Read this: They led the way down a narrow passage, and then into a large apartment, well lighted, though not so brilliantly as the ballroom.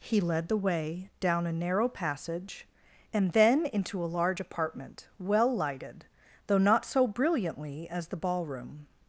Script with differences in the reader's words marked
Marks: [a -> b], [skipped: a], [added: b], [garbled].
[They -> He] led the way down a narrow passage, and then into a large apartment, well lighted, though not so brilliantly as the ballroom.